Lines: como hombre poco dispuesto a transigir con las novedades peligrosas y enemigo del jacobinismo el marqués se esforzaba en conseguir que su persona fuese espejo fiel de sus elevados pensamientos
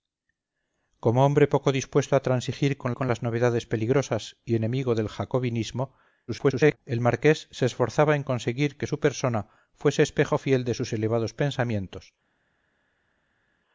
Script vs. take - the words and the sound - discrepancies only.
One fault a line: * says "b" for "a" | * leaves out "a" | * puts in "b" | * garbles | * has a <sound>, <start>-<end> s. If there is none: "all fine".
* puts in "con"
* garbles